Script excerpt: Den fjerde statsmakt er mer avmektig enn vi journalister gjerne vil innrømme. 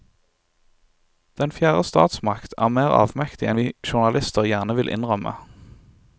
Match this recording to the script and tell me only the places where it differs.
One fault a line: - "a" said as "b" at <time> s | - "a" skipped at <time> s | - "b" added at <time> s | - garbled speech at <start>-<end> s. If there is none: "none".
none